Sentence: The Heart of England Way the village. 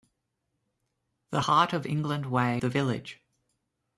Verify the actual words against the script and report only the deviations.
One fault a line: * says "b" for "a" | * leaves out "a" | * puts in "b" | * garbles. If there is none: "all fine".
all fine